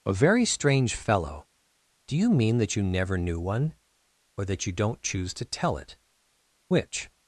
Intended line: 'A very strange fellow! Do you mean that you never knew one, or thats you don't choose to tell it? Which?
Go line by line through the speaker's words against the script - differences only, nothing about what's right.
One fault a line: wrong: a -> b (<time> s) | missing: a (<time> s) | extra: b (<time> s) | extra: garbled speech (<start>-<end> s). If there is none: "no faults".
wrong: thats -> that (4.4 s)